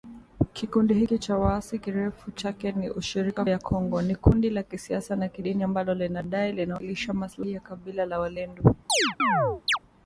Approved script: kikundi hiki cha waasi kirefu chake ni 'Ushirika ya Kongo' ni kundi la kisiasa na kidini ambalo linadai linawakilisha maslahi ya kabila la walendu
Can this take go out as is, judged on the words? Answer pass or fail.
pass